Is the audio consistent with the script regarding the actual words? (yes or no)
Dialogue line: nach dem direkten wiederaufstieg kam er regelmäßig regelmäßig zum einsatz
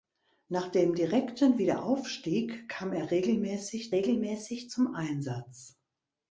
yes